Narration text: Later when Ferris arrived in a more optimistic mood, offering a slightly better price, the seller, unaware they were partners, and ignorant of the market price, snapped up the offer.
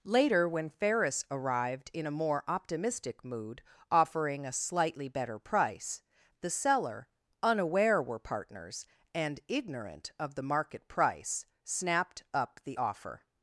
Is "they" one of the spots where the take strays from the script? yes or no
yes